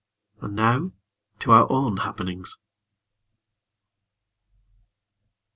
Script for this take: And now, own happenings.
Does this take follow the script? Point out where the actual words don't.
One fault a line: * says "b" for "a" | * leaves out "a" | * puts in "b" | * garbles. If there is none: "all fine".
* puts in "to our"